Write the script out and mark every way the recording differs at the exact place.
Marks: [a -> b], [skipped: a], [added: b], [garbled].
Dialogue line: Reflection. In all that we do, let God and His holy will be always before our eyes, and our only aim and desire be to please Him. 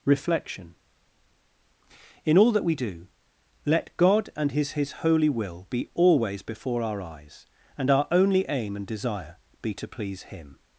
Reflection. In all that we do, let God and His [added: His] holy will be always before our eyes, and our only aim and desire be to please Him.